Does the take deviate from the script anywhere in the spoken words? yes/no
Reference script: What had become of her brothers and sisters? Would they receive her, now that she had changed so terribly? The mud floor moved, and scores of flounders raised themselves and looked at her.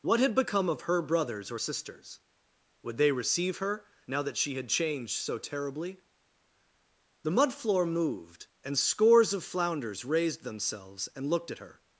yes